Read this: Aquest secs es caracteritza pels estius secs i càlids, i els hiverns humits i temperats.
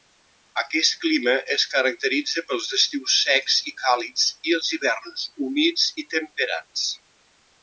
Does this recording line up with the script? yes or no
no